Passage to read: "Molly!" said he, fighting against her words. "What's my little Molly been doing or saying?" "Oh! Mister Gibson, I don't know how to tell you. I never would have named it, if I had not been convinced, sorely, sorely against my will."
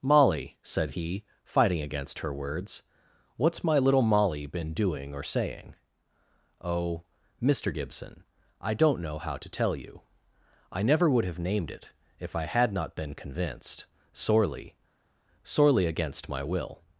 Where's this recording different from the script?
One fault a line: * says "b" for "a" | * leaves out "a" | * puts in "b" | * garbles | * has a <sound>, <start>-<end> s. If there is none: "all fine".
all fine